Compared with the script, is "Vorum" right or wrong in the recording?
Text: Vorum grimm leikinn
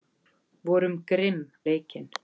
right